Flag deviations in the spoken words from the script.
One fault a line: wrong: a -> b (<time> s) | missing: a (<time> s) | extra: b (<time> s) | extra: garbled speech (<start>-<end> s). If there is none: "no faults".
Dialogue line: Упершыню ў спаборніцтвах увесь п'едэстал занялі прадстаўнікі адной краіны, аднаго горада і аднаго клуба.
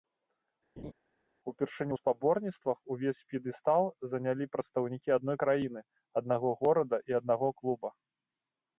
no faults